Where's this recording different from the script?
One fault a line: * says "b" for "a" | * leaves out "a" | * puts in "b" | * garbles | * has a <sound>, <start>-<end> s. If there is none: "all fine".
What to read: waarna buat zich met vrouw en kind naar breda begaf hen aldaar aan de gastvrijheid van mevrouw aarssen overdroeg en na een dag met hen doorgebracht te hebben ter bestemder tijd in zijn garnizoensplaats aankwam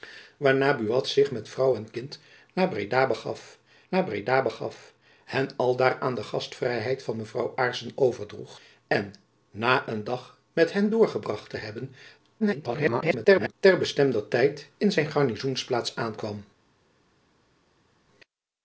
* puts in "naar breda begaf"
* garbles